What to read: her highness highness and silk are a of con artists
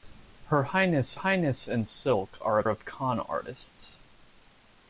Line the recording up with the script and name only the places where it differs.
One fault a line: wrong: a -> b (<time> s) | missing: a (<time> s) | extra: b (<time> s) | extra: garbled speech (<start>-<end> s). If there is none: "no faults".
no faults